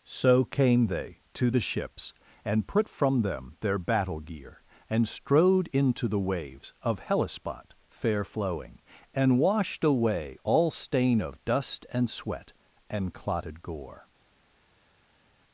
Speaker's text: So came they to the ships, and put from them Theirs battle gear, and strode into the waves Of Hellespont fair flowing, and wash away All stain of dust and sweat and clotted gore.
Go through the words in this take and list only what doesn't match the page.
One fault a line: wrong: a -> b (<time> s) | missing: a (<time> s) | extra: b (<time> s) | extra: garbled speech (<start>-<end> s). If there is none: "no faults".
wrong: Theirs -> Their (3.6 s)
wrong: wash -> washed (9.4 s)